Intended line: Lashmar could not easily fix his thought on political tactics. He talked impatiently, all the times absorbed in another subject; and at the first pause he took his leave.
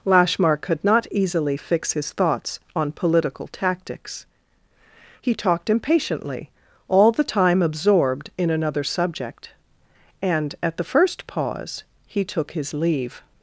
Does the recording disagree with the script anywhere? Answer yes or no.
yes